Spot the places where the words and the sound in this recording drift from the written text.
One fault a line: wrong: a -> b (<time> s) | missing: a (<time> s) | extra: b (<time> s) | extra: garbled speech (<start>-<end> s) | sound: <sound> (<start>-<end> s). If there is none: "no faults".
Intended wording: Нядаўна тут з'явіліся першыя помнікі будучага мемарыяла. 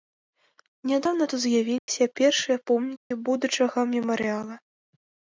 sound: dropout (1.8-1.9 s)
sound: dropout (3.0-3.1 s)